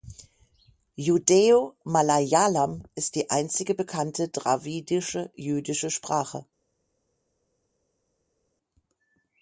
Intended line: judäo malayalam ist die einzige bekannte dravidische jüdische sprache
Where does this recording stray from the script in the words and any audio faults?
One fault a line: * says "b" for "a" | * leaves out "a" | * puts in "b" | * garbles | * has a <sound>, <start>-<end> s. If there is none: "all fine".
all fine